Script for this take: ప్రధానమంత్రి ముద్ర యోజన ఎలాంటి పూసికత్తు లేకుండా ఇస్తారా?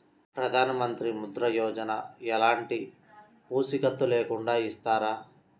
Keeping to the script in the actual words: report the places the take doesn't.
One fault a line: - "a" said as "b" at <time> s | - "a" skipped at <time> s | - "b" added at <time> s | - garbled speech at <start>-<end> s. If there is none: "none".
none